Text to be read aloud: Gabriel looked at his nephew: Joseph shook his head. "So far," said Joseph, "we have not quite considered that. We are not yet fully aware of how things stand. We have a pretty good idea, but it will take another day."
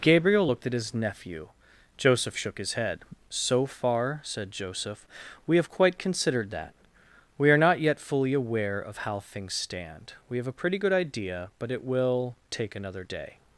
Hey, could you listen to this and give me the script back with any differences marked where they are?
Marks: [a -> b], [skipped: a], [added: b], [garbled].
Gabriel looked at his nephew: Joseph shook his head. "So far," said Joseph, "we have [skipped: not] quite considered that. We are not yet fully aware of how things stand. We have a pretty good idea, but it will take another day."